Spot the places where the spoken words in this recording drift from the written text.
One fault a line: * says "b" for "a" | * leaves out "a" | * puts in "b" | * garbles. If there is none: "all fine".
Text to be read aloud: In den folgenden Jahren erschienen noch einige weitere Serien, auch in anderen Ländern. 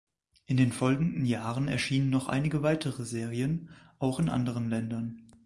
all fine